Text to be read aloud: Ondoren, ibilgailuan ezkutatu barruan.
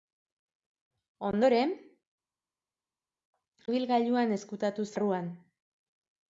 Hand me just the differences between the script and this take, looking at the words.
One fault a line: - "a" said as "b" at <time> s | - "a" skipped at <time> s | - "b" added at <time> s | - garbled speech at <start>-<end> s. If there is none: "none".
none